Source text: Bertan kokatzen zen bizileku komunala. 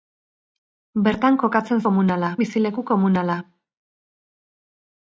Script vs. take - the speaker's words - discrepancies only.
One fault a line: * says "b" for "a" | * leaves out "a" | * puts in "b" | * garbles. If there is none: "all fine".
* says "komunala" for "zen"